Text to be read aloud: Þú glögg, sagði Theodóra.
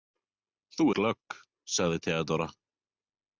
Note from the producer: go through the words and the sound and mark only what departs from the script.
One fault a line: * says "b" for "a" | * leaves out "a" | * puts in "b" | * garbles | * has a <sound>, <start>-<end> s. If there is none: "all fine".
all fine